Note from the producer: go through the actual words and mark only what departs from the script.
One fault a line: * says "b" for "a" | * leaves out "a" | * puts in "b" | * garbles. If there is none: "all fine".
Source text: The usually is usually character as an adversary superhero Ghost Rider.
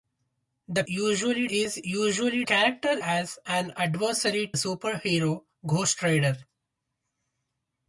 all fine